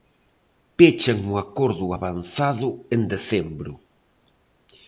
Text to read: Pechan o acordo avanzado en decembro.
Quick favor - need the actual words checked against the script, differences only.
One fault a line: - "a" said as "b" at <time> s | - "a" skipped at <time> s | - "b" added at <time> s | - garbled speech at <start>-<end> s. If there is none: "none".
none